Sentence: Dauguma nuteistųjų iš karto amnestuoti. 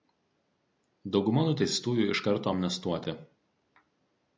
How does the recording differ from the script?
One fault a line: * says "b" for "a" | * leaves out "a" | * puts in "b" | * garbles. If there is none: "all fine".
all fine